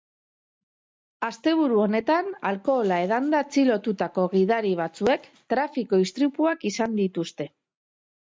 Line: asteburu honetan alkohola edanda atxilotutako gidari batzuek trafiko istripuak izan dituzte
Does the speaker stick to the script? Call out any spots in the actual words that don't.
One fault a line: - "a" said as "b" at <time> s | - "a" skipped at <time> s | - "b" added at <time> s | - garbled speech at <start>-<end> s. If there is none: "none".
none